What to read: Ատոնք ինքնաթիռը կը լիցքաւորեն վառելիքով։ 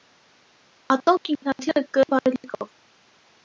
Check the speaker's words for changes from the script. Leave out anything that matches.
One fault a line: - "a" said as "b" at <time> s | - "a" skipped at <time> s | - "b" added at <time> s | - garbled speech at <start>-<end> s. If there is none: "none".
- "լիցքաւորեն" skipped at 2.1 s